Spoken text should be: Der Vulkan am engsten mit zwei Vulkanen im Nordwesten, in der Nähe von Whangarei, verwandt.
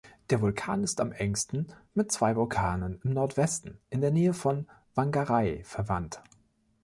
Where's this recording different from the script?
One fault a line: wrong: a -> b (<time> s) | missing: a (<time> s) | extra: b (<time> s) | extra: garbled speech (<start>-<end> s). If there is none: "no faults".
extra: ist (0.8 s)